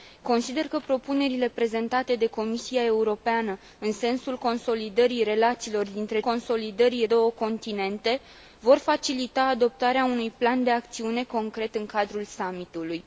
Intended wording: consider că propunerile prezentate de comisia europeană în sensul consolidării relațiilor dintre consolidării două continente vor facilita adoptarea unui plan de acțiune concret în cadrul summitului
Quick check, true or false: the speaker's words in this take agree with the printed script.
true